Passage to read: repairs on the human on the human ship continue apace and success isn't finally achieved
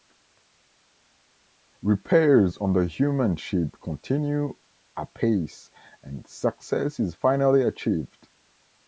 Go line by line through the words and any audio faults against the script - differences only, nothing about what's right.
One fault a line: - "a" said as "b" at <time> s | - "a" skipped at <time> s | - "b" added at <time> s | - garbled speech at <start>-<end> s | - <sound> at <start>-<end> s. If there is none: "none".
- "on the human" skipped at 3.4 s
- "isn't" said as "is" at 7.0 s